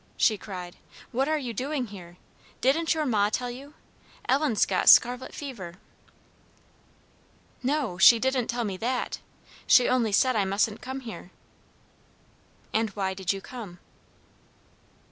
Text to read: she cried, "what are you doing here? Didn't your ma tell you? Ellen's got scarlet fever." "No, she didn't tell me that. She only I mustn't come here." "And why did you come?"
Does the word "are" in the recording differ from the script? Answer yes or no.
no